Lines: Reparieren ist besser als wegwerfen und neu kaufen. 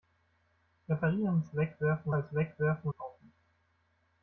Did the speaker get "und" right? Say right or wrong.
wrong